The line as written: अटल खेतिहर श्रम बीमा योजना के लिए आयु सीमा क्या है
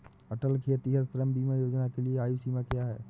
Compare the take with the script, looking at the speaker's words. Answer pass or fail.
pass